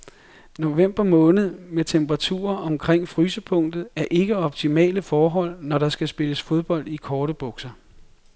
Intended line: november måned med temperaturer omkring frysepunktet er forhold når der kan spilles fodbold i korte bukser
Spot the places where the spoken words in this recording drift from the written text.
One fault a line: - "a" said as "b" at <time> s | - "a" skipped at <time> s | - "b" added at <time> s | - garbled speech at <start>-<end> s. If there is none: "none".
- "ikke optimale" added at 4.1 s
- "kan" said as "skal" at 5.9 s